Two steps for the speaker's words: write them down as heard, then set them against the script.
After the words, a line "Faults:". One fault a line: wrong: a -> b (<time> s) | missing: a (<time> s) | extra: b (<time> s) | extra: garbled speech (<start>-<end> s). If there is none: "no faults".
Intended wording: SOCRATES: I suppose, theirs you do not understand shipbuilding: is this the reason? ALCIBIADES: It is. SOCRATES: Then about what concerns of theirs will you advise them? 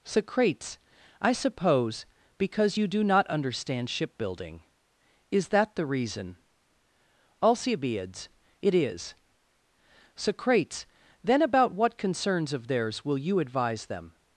SOCRATES: I suppose, because you do not understand shipbuilding: is that the reason? ALCIBIADES: It is. SOCRATES: Then about what concerns of theirs will you advise them?
Faults:
wrong: theirs -> because (2.4 s)
wrong: this -> that (5.5 s)